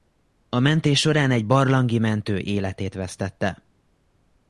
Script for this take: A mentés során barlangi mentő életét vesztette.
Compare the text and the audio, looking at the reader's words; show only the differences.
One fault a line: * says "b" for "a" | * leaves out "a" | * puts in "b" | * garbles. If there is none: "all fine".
* puts in "egy"